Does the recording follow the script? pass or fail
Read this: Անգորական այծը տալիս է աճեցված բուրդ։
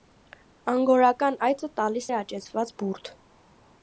pass